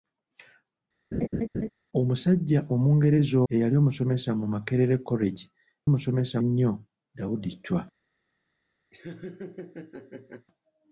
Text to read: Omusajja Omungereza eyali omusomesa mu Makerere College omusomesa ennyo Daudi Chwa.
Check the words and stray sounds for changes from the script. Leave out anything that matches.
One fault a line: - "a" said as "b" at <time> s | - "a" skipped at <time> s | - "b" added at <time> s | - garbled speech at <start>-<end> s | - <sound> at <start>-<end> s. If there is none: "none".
- laugh at 1.1-1.7 s
- laugh at 8.9-10.5 s